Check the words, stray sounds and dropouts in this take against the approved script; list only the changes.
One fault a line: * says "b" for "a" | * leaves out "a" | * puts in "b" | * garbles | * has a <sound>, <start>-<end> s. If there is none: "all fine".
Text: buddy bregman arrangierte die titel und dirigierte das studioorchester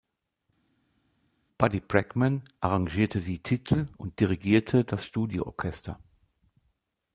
all fine